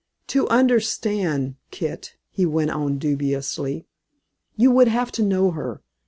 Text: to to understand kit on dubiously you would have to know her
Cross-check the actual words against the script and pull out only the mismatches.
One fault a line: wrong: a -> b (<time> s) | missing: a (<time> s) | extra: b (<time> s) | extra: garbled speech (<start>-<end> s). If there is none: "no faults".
missing: to (0.5 s)
extra: he went (2.3 s)